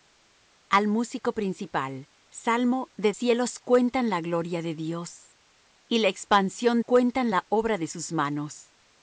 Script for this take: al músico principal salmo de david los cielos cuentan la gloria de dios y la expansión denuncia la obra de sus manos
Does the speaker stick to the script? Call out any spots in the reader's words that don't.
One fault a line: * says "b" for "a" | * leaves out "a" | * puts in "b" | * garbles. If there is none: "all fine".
* leaves out "david los"
* says "cuentan" for "denuncia"